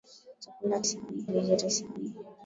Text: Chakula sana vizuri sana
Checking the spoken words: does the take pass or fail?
pass